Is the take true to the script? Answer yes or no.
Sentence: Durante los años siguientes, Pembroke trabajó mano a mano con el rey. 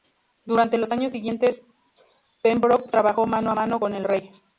yes